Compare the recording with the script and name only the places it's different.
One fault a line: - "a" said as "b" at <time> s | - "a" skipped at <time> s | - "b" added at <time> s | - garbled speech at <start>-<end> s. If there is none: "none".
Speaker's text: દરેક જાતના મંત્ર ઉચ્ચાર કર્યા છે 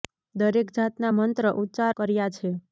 none